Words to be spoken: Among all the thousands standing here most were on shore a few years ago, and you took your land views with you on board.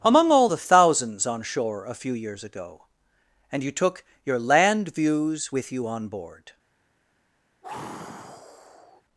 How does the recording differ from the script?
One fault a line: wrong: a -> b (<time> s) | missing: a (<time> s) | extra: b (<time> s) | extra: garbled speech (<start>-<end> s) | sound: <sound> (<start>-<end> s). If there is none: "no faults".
missing: standing here most were (1.3 s)
sound: sigh (7.6-9.0 s)